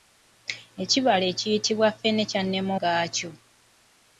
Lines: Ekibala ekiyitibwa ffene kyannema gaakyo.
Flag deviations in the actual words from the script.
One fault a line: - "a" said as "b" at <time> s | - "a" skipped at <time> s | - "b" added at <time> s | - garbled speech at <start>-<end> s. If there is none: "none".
none